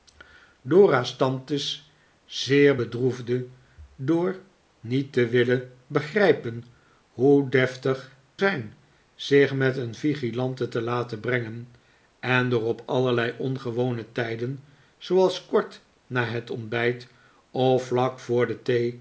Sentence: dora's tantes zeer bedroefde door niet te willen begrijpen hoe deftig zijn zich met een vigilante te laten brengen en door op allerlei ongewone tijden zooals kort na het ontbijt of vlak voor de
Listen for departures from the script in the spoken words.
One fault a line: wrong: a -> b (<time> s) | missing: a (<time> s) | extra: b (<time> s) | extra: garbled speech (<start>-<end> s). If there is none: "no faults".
no faults